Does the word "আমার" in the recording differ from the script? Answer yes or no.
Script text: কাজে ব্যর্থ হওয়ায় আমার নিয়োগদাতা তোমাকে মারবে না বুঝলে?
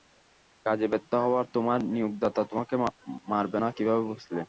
yes